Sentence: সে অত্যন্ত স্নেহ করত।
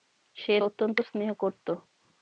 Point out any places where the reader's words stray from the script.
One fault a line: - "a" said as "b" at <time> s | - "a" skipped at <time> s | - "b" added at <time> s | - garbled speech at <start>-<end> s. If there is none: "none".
none